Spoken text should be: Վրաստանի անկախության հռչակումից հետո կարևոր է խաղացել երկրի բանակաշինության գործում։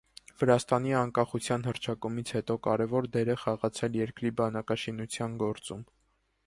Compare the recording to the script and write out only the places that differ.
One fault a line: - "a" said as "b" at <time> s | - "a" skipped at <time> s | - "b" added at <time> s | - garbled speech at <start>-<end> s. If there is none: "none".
- "դեր" added at 3.2 s